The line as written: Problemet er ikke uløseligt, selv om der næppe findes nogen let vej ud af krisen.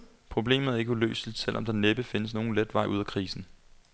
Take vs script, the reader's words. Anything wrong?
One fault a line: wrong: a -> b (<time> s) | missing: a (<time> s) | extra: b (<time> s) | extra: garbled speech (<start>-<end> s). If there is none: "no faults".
no faults